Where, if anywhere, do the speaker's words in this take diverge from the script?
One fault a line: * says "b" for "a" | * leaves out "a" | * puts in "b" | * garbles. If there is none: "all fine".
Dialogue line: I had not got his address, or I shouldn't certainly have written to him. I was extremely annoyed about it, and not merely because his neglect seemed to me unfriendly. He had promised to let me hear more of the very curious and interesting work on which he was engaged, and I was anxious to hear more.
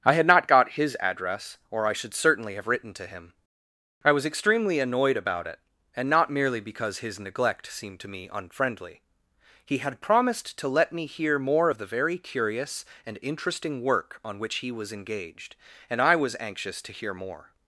* says "should" for "shouldn't"